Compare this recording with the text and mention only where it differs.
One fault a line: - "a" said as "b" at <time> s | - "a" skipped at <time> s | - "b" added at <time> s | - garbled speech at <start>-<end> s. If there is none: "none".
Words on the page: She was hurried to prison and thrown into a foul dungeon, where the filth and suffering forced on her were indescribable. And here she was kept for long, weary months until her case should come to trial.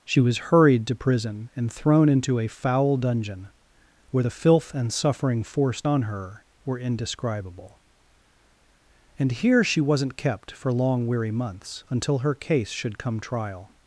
- "was" said as "wasn't" at 9.8 s
- "to" skipped at 13.2 s